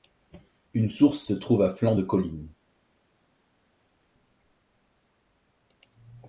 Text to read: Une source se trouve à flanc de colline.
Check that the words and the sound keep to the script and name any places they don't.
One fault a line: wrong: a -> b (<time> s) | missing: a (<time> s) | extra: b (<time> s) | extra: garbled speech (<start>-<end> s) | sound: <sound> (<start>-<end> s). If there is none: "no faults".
no faults